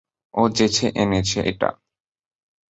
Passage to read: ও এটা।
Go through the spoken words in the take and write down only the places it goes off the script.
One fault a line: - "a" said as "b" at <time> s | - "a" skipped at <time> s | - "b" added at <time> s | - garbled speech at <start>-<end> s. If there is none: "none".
- "যেচে এনেছে" added at 0.5 s